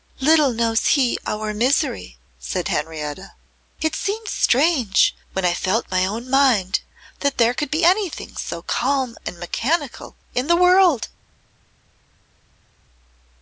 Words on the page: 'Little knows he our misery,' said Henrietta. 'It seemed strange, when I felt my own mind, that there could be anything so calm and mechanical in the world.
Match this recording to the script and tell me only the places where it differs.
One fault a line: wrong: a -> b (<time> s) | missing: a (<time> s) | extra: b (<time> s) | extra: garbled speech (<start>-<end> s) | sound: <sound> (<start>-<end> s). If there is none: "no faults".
no faults